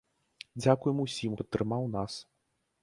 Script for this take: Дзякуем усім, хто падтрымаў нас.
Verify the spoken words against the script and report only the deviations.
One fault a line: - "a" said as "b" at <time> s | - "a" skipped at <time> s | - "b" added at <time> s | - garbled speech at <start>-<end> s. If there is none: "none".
- "хто" skipped at 1.4 s